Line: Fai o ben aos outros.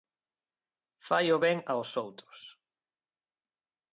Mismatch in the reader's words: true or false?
false